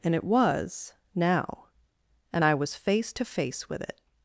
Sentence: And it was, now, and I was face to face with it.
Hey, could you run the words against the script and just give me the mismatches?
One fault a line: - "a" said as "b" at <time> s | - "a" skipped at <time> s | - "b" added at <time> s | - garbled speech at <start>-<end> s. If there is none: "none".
none